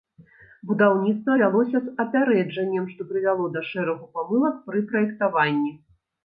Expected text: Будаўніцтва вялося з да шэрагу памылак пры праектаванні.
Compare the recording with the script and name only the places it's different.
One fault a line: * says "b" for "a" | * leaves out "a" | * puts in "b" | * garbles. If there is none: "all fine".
* puts in "апярэджаннем што прывяло"